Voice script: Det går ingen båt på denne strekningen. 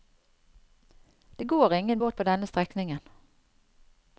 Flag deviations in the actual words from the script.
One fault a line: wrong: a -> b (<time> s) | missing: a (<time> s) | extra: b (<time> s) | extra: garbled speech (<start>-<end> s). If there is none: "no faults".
no faults